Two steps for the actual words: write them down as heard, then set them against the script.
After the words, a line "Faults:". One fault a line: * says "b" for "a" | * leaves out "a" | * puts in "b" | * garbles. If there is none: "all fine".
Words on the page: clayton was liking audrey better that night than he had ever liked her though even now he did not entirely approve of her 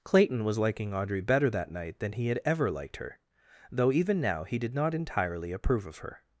clayton was liking audrey better that night than he had ever liked her though even now he did not entirely approve of her
Faults:
all fine